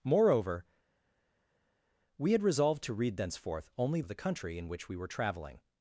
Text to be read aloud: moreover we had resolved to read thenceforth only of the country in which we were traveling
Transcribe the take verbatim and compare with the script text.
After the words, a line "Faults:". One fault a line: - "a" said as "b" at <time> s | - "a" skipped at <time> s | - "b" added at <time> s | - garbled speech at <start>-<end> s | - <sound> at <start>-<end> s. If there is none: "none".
moreover we had resolved to read thenceforth only of the country in which we were traveling
Faults:
none